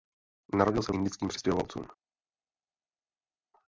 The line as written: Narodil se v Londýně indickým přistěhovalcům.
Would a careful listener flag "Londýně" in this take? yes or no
yes